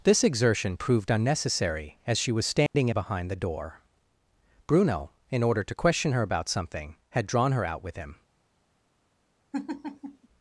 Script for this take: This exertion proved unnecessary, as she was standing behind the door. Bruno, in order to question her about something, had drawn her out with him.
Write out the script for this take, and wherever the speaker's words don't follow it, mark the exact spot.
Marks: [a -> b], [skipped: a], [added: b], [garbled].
This exertion proved unnecessary, as she was standing behind the door. Bruno, in order to question her about something, had drawn her out with him.